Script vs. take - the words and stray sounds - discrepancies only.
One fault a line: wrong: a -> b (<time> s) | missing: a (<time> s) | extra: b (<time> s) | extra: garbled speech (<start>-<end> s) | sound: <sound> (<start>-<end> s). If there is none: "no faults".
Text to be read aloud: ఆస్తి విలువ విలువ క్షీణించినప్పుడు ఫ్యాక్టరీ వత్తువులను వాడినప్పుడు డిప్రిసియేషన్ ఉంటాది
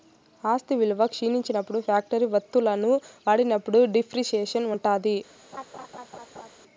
missing: విలువ (1.1 s)
sound: laugh (5.5-6.5 s)